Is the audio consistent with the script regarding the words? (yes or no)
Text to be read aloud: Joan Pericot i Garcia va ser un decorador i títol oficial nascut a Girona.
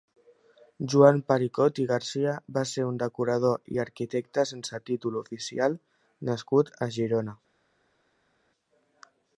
no